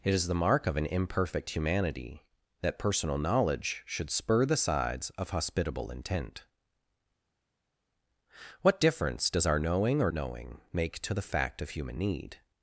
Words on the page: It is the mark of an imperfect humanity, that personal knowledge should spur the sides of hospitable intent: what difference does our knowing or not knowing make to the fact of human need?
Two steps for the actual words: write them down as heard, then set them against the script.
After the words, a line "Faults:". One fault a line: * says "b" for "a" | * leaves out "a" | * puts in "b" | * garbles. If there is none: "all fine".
It is the mark of an imperfect humanity, that personal knowledge should spur the sides of hospitable intent: what difference does our knowing or knowing make to the fact of human need?
Faults:
* leaves out "not"